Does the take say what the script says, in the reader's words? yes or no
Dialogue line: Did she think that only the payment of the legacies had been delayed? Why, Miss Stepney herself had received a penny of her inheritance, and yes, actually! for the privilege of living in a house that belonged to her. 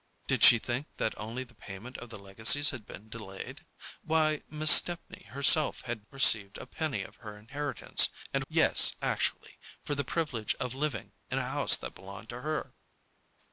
yes